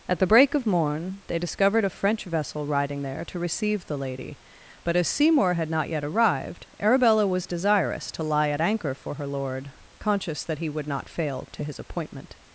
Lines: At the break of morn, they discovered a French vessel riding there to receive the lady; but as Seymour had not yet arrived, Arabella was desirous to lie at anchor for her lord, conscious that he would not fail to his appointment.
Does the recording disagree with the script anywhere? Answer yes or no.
no